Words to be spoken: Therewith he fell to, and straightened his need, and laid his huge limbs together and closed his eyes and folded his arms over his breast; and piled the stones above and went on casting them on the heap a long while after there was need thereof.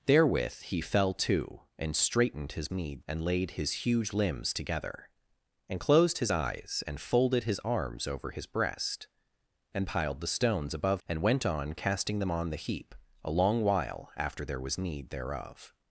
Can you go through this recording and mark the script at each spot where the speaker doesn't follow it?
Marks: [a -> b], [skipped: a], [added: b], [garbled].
Therewith he fell to, and straightened his need, and laid his huge limbs together and closed his eyes and folded his arms over his breast; and piled the stones above and went on casting them on the heap a long while after there was need thereof.